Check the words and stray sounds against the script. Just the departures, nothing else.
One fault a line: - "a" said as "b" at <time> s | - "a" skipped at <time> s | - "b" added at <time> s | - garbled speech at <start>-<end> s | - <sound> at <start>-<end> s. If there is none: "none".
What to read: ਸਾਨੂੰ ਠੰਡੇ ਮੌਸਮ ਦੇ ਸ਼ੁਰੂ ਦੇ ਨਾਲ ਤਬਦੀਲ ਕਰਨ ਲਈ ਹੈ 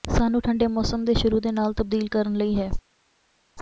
none